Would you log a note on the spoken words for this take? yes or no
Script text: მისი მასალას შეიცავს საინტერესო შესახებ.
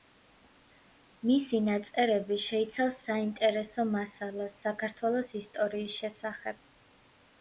yes